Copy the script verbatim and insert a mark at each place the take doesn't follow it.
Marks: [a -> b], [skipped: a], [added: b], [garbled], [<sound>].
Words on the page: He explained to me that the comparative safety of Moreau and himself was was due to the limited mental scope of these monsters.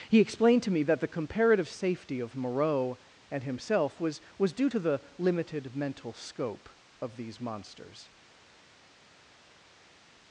He explained to me that the comparative safety of Moreau and himself was was due to the limited mental scope of these monsters.